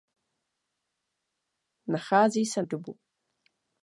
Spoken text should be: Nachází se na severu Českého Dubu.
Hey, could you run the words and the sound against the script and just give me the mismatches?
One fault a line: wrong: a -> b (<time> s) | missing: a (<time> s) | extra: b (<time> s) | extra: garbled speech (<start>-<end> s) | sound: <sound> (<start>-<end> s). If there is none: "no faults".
missing: na severu Českého (2.6 s)